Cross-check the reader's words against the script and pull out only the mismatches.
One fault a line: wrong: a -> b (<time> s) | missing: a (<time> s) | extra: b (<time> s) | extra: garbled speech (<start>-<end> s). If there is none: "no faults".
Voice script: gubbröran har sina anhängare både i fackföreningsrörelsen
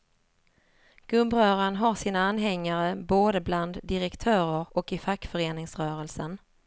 extra: bland direktörer och (3.4 s)